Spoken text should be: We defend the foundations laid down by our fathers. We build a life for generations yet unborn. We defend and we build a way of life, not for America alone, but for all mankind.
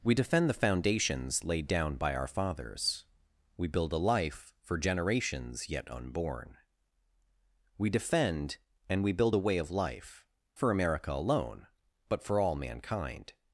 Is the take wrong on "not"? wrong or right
wrong